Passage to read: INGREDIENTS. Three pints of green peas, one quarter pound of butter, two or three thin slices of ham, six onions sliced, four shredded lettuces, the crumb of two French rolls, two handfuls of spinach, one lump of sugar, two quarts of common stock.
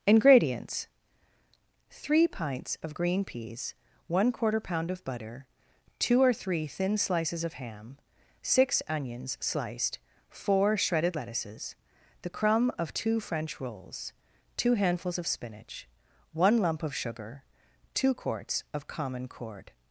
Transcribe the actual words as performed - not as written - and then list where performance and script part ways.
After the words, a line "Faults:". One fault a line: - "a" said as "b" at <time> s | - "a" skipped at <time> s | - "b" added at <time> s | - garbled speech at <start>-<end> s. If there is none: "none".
INGREDIENTS. Three pints of green peas, one quarter pound of butter, two or three thin slices of ham, six onions sliced, four shredded lettuces, the crumb of two French rolls, two handfuls of spinach, one lump of sugar, two quarts of common cord.
Faults:
- "stock" said as "cord" at 19.3 s